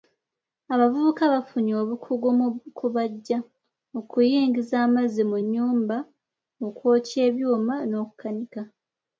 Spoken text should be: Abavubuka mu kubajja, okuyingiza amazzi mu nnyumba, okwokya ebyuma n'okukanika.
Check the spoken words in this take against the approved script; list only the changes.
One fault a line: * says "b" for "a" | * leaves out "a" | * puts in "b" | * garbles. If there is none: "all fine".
* puts in "bafunye obukugu"